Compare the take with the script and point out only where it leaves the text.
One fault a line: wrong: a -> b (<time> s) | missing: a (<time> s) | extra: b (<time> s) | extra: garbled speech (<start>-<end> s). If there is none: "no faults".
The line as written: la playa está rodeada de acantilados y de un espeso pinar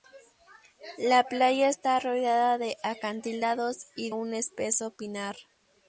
missing: de (4.1 s)